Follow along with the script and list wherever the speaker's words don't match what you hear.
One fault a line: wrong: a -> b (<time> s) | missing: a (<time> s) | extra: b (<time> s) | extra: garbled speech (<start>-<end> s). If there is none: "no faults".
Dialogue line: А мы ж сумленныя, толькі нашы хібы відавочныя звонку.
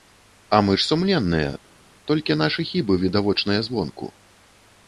no faults